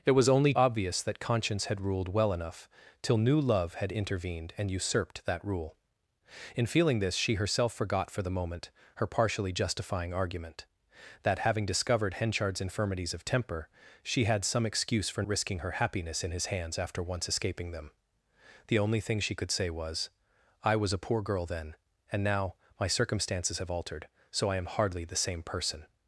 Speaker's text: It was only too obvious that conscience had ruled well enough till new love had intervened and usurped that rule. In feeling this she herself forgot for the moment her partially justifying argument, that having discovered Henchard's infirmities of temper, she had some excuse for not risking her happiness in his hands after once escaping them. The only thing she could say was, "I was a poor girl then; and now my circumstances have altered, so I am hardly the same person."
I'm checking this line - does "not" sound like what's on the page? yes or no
no